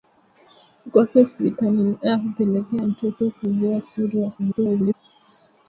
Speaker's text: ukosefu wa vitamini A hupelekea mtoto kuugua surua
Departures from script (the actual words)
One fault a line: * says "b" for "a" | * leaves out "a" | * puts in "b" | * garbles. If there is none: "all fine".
* leaves out "wa"
* garbles